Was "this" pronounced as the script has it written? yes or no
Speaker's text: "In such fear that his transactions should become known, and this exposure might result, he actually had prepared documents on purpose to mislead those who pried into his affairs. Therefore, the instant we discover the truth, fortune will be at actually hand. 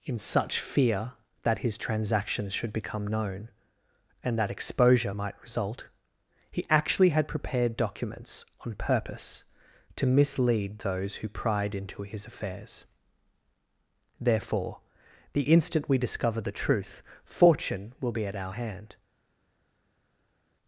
no